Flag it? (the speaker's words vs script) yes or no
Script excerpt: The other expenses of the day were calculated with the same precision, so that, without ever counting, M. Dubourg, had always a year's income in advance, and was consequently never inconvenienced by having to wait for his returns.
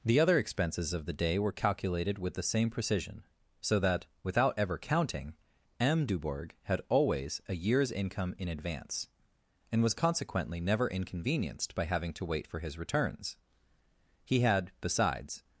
yes